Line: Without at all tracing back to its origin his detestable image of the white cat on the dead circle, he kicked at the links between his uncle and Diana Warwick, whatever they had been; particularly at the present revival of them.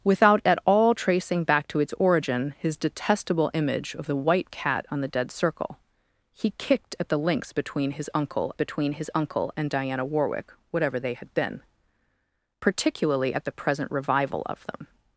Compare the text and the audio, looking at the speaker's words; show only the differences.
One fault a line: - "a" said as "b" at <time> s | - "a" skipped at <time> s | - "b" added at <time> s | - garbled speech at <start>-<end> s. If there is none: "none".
- "between his uncle" added at 8.5 s